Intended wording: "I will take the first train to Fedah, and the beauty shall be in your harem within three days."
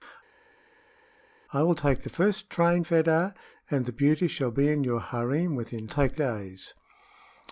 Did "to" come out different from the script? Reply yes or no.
yes